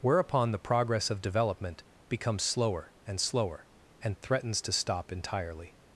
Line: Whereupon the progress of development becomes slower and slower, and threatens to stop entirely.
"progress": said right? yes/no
yes